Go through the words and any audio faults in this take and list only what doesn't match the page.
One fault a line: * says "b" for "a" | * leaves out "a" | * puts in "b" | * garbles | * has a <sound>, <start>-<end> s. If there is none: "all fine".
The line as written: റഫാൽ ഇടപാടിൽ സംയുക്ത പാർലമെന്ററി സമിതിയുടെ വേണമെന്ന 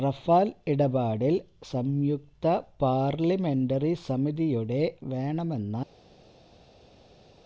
all fine